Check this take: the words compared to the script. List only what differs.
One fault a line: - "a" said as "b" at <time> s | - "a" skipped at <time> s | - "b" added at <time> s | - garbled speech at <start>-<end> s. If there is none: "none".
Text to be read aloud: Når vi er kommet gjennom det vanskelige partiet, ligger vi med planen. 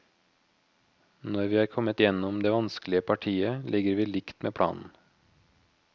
- "likt" added at 4.1 s